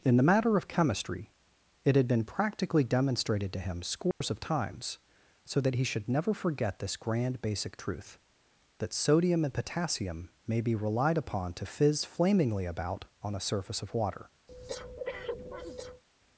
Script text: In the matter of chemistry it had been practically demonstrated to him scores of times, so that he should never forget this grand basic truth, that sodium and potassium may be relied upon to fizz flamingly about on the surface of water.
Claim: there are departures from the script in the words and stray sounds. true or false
true